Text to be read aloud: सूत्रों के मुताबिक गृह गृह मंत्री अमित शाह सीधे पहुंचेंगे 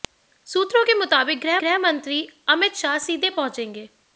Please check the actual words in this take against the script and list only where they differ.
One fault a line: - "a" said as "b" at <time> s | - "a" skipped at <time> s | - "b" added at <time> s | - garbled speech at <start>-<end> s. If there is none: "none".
none